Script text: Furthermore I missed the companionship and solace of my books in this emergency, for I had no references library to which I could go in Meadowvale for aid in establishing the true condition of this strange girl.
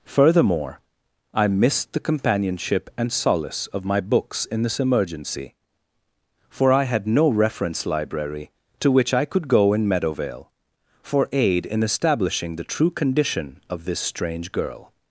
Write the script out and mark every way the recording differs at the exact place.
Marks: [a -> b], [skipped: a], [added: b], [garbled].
Furthermore I missed the companionship and solace of my books in this emergency, for I had no [references -> reference] library to which I could go in Meadowvale for aid in establishing the true condition of this strange girl.